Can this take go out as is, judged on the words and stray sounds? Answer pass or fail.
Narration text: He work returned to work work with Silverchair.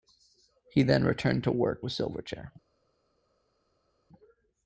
fail